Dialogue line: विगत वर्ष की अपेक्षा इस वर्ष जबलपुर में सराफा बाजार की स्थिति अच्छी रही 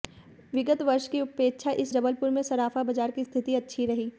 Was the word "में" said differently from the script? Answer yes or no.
no